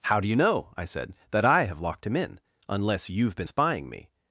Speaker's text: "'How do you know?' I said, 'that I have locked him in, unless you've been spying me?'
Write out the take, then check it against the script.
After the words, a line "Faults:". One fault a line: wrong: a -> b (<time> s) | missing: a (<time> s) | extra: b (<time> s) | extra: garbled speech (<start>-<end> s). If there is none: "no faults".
"'How do you know?' I said, 'that I have locked him in, unless you've been spying me?'
Faults:
no faults